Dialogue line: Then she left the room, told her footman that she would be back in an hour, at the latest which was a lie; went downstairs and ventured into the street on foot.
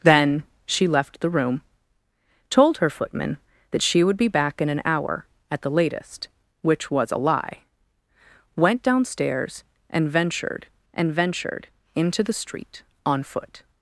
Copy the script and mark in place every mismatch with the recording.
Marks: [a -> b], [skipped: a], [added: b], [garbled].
Then she left the room, told her footman that she would be back in an hour, at the latest which was a lie; went downstairs and ventured [added: and ventured] into the street on foot.